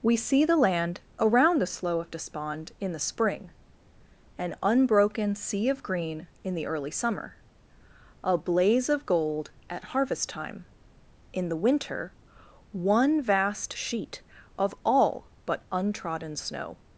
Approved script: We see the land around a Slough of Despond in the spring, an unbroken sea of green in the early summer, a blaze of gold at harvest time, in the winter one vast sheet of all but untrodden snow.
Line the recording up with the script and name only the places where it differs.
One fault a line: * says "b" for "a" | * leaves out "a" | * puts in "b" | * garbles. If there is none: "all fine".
* says "the" for "a"